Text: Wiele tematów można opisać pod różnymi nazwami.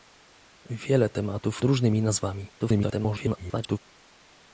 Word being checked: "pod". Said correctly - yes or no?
no